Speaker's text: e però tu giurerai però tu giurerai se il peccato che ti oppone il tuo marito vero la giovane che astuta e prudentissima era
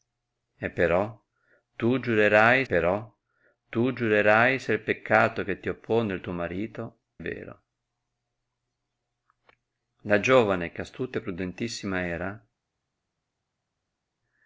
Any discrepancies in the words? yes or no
no